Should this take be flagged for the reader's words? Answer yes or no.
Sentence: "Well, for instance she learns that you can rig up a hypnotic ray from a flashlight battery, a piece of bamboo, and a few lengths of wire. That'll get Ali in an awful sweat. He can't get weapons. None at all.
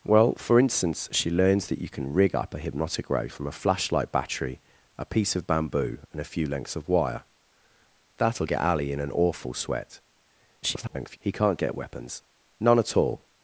yes